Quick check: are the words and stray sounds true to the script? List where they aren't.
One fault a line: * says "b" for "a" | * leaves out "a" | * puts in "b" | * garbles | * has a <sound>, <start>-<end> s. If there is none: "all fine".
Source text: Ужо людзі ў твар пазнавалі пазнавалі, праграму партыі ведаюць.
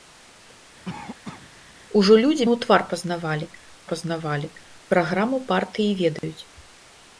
* has a cough, 0.9-1.5 s
* has a dropout, 6.2-6.2 s